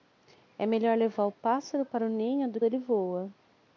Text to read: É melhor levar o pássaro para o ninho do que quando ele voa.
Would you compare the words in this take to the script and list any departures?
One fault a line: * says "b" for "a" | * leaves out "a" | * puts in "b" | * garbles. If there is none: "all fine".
* leaves out "que quando"